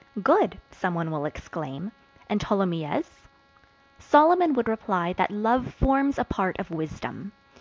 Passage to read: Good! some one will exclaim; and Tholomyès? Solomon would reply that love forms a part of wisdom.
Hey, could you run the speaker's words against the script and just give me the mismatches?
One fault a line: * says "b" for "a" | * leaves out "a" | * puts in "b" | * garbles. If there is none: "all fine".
all fine